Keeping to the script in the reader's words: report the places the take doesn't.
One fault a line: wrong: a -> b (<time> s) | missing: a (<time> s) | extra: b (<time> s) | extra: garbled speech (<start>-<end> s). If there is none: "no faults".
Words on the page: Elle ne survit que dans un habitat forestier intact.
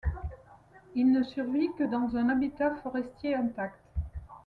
wrong: Elle -> Il (0.9 s)